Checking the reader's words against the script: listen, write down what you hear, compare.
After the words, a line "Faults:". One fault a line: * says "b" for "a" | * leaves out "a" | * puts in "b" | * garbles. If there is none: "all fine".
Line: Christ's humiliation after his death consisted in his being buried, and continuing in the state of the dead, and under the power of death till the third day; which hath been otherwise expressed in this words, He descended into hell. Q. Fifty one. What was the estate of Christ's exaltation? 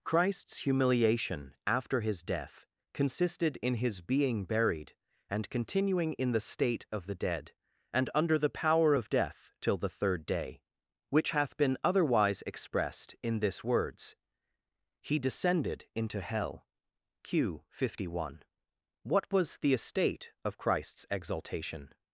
Christ's humiliation after his death consisted in his being buried, and continuing in the state of the dead, and under the power of death till the third day; which hath been otherwise expressed in this words, He descended into hell. Q. Fifty one. What was the estate of Christ's exaltation?
Faults:
all fine